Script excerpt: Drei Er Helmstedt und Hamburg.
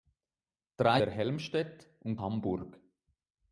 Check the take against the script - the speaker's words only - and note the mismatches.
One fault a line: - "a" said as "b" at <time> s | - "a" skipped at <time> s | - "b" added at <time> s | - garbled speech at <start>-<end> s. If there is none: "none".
none